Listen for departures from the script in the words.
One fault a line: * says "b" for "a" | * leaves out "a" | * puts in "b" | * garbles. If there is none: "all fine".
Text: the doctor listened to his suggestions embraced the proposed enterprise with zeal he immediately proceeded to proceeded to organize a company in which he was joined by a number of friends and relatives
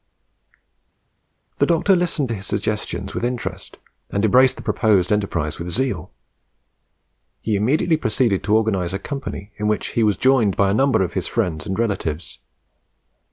* puts in "with interest and"
* leaves out "proceeded to"
* puts in "his"